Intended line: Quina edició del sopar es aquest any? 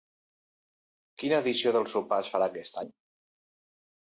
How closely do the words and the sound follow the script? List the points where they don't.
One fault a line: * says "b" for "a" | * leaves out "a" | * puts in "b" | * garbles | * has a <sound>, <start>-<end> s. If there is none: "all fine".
* puts in "farà"